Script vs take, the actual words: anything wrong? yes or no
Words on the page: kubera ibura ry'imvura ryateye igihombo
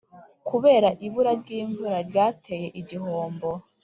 no